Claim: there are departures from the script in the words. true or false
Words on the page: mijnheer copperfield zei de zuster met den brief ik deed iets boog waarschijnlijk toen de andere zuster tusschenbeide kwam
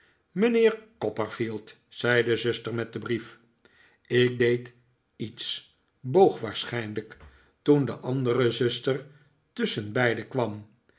false